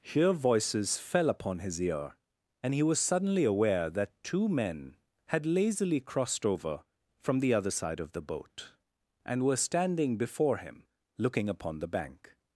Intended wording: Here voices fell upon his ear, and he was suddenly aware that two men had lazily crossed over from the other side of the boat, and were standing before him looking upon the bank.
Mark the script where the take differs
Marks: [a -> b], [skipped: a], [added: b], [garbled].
Here voices fell upon his ear, and he was suddenly aware that two men had lazily crossed over from the other side of the boat, and were standing before him looking upon the bank.